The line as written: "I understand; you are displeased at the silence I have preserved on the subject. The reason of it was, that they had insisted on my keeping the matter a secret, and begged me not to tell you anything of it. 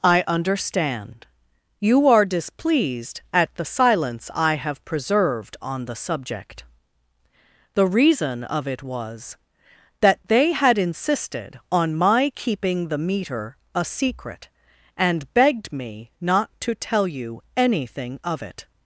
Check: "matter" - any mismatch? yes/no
yes